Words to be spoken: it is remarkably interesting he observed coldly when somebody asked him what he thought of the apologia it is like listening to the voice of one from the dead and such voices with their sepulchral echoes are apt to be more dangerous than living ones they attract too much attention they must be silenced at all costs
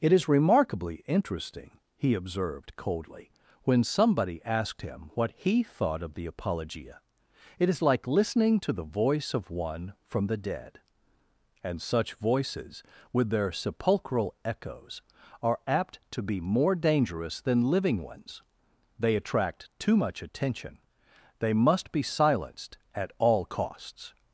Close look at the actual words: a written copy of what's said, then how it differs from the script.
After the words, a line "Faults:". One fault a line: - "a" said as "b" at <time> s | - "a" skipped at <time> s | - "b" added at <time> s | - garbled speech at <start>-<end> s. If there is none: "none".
it is remarkably interesting he observed coldly when somebody asked him what he thought of the apologia it is like listening to the voice of one from the dead and such voices with their sepulchral echoes are apt to be more dangerous than living ones they attract too much attention they must be silenced at all costs
Faults:
none